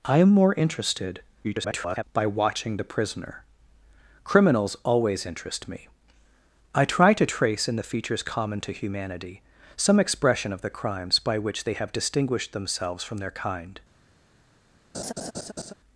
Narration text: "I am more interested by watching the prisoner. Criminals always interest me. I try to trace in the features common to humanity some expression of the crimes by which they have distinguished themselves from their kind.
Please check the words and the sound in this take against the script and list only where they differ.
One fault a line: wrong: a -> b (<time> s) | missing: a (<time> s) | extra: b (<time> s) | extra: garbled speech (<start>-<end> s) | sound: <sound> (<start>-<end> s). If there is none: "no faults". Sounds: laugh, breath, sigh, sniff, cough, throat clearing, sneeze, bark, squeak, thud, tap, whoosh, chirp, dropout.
extra: garbled speech (1.4-2.0 s)
sound: laugh (14.9-15.7 s)